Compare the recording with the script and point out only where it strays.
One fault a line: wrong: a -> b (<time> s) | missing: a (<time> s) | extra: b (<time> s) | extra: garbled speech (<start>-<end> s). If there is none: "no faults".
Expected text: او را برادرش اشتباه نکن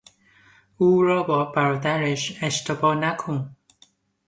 extra: با (1.2 s)